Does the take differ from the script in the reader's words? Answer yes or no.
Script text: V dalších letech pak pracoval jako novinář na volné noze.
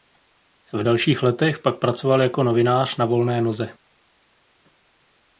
no